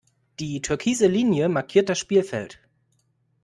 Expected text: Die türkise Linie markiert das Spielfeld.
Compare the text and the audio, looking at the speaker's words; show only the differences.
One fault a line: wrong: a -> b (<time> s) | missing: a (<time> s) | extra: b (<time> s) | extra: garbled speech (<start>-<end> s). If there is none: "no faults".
no faults